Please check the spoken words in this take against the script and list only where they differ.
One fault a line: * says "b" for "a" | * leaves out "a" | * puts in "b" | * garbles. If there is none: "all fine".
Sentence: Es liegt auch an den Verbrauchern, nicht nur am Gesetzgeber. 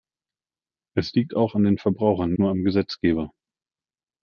* leaves out "nicht"